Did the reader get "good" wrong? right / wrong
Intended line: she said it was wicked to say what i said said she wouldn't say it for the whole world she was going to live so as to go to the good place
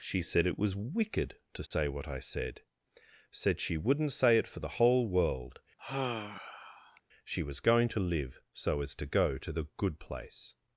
right